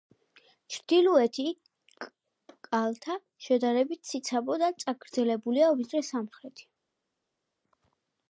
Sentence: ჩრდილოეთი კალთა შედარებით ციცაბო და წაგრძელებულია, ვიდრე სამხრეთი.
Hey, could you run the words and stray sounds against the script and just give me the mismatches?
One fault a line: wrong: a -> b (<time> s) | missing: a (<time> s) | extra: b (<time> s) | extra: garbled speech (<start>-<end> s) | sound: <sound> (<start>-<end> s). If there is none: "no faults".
no faults